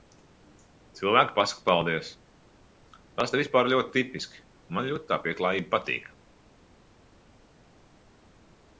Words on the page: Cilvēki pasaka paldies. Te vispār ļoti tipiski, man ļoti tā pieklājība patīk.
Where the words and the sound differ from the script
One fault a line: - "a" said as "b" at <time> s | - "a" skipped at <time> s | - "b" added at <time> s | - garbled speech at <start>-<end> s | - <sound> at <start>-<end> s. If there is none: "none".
- "Tas" added at 3.2 s